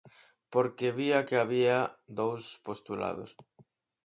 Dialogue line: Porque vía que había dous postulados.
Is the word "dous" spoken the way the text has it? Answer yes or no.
yes